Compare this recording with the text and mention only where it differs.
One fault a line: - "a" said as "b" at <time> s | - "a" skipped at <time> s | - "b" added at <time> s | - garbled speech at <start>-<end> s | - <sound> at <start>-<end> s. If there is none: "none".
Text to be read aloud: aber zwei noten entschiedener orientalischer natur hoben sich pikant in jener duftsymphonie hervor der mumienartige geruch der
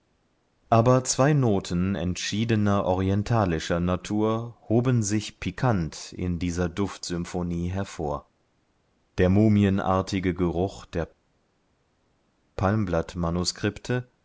- "jener" said as "dieser" at 6.4 s